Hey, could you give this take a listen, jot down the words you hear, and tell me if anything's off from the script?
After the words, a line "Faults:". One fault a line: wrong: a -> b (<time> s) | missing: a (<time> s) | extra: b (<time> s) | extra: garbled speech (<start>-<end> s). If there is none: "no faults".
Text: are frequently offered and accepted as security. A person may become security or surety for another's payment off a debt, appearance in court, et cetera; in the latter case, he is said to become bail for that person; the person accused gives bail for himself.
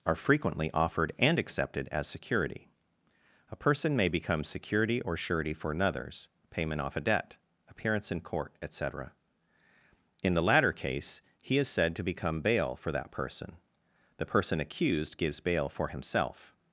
are frequently offered and accepted as security. A person may become security or surety for another's payment off a debt, appearance in court, et cetera; in the latter case, he is said to become bail for that person; the person accused gives bail for himself.
Faults:
no faults